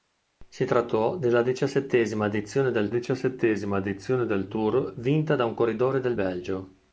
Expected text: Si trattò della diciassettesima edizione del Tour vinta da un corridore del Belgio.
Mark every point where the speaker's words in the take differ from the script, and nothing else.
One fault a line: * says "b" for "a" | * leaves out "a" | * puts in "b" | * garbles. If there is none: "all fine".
* puts in "diciassettesima edizione del"